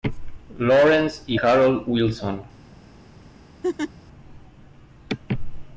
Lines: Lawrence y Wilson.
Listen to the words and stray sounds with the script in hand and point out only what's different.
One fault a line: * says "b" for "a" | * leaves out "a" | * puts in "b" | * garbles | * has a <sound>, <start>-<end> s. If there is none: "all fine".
* puts in "Harold"
* has a laugh, 3.6-3.9 s